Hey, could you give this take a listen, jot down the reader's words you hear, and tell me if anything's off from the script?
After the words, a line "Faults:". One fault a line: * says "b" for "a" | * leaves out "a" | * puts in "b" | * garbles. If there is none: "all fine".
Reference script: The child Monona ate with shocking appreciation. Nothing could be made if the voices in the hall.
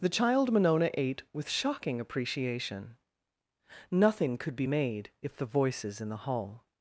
The child Monona ate with shocking appreciation. Nothing could be made if the voices in the hall.
Faults:
all fine